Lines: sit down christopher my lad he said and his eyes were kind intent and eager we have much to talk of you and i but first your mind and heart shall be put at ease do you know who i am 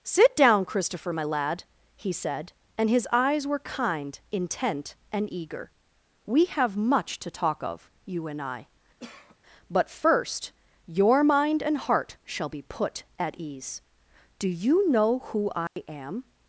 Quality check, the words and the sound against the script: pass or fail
fail